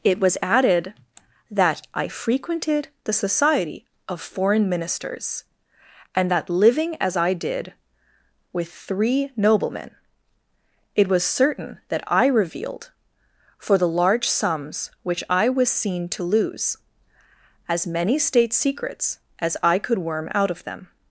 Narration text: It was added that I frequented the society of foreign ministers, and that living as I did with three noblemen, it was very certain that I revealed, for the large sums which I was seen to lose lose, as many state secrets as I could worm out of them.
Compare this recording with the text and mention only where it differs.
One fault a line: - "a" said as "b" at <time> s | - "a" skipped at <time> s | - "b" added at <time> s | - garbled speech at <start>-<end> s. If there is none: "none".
- "very" skipped at 11.2 s
- "lose" skipped at 16.8 s